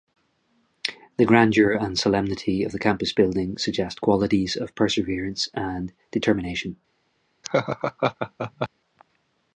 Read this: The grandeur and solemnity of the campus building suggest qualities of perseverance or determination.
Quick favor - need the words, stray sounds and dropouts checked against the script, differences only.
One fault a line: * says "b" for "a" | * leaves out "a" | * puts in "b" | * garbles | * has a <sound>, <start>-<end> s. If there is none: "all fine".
* says "and" for "or"
* has a laugh, 7.4-8.7 s